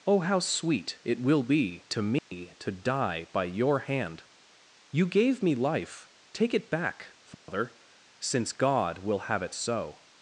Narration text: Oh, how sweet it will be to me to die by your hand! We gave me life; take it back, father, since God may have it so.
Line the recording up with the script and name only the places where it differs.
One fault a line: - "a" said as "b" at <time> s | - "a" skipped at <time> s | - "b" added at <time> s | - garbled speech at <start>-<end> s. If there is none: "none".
- "We" said as "You" at 4.9 s
- "may" said as "will" at 9.0 s